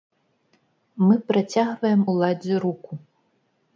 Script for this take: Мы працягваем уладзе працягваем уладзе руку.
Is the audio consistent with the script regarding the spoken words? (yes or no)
no